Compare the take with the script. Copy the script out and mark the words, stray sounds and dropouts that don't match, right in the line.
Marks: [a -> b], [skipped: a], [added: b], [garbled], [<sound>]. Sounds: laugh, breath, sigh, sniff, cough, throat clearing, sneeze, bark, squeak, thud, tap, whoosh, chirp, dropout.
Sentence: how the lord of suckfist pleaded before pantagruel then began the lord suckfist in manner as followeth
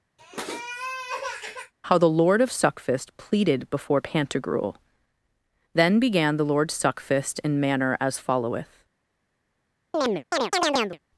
[sniff] how the lord of suckfist pleaded before pantagruel then began the lord suckfist in manner as followeth [chirp]